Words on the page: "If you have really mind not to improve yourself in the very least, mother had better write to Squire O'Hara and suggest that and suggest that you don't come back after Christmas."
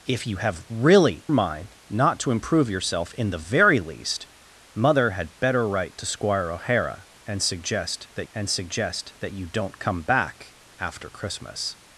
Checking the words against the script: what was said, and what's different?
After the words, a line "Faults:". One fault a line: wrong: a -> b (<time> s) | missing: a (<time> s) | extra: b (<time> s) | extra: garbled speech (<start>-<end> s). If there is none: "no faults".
"If you have really mind not to improve yourself in the very least, mother had better write to Squire O'Hara and suggest that and suggest that you don't come back after Christmas."
Faults:
no faults